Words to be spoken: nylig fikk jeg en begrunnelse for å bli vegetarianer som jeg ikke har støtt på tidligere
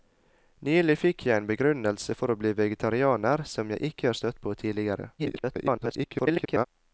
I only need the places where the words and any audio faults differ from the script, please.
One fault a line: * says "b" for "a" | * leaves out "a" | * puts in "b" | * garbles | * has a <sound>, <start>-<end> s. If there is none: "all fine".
* garbles